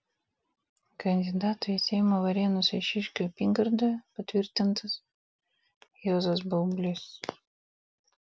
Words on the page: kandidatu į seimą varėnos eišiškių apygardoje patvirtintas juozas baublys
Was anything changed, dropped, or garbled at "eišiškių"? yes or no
no